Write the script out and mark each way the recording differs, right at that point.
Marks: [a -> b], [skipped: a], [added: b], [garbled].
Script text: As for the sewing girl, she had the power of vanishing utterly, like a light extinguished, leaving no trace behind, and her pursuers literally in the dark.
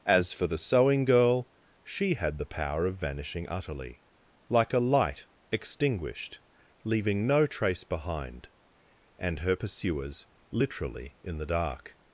As for the sewing girl, she had the power of vanishing utterly, like a light extinguished, leaving no trace behind, and her pursuers literally in the dark.